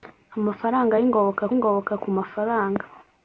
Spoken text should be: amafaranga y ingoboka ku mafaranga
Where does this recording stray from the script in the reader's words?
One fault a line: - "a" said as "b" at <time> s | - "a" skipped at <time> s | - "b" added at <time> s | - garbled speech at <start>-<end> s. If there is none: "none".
- "ingoboka" added at 1.5 s